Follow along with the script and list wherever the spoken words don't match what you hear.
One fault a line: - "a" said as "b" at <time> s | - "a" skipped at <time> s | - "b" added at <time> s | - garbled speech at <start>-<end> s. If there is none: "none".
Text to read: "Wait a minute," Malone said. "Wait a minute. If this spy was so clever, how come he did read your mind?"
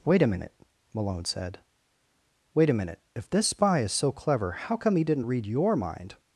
- "was" said as "is" at 3.8 s
- "did" said as "didn't" at 5.0 s